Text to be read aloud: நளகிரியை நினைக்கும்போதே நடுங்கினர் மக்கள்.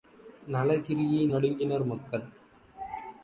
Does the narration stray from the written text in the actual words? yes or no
yes